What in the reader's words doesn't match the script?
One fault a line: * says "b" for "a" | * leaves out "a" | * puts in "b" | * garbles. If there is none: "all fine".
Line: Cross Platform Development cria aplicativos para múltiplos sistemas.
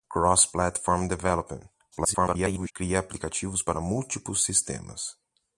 * garbles